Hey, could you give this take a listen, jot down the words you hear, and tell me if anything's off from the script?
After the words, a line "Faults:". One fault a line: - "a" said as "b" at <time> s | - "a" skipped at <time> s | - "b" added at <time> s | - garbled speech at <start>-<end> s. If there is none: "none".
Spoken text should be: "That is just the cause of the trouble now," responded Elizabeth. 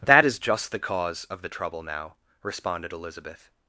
"That is just the cause of the trouble now," responded Elizabeth.
Faults:
none